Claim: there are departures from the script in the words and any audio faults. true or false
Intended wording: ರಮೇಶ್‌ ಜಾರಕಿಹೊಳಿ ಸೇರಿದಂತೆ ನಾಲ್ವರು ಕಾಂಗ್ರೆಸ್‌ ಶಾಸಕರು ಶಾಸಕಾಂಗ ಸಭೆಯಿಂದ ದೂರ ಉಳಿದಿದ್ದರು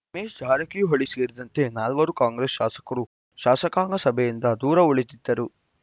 false